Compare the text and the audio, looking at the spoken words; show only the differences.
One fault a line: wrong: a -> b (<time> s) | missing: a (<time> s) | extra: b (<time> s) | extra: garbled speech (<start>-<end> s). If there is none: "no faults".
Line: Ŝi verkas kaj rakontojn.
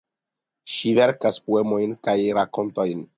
extra: poemojn (1.5 s)